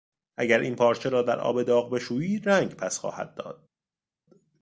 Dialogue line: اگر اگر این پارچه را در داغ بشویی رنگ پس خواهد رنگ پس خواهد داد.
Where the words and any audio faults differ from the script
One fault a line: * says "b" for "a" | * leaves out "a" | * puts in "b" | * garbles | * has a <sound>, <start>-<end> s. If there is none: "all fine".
* leaves out "اگر"
* puts in "آب"
* leaves out "رنگ پس خواهد"